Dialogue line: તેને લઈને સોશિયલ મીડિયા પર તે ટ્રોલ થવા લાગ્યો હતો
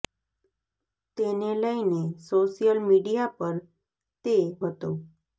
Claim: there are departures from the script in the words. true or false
true